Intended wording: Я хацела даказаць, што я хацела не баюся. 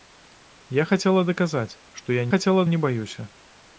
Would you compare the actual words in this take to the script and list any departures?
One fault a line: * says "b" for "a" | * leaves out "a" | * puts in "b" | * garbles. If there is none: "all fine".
all fine